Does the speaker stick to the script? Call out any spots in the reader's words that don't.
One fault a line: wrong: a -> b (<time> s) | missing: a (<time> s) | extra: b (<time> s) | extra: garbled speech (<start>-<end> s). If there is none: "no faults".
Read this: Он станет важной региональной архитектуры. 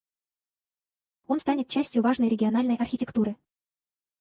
extra: частью (1.7 s)